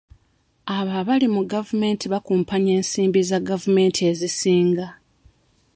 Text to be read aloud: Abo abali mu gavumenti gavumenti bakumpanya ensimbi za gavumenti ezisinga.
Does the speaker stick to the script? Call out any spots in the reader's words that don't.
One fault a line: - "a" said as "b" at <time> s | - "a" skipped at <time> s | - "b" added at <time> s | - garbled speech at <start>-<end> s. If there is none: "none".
- "gavumenti" skipped at 2.0 s